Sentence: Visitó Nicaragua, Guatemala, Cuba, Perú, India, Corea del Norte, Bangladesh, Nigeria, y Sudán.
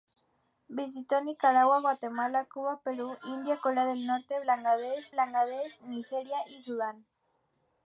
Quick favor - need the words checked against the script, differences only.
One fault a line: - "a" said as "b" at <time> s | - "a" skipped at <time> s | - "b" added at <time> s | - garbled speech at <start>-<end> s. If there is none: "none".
- "Bangladesh" added at 5.2 s